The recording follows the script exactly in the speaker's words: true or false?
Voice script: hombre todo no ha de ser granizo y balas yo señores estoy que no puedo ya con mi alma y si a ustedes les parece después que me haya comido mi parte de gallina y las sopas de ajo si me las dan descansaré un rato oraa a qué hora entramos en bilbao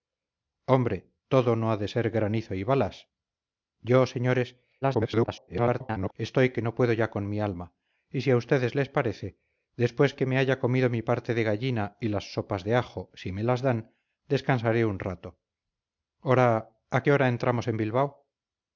false